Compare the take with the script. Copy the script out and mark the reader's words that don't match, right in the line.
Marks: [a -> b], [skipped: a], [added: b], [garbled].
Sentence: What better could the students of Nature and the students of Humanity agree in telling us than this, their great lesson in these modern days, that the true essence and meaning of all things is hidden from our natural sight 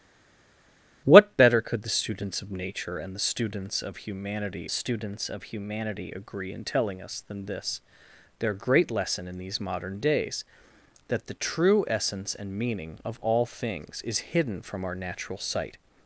What better could the students of Nature and the students of Humanity [added: students of Humanity] agree in telling us than this, their great lesson in these modern days, that the true essence and meaning of all things is hidden from our natural sight